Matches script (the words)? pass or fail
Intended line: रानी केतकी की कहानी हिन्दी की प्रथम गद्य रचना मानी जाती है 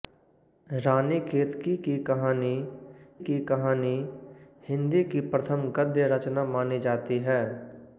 fail